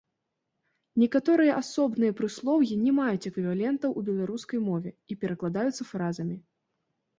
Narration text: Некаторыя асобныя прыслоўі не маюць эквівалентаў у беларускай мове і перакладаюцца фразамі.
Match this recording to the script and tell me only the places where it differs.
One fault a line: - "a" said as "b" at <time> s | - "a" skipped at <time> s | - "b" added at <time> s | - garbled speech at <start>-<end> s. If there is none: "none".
none